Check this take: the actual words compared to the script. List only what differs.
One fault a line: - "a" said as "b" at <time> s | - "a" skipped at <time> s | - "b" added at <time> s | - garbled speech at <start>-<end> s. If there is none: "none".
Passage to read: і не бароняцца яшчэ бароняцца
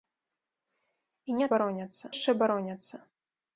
none